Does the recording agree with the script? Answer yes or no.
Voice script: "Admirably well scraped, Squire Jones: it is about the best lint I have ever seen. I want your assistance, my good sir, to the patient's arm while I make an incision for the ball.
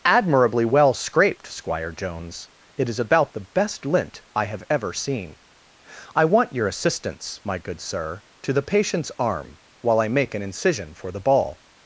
yes